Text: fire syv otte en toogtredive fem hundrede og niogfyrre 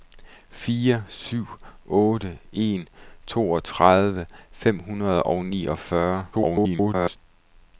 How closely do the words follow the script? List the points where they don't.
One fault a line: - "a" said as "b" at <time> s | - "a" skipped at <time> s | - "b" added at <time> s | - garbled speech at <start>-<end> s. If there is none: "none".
- garbled speech at 6.3-7.2 s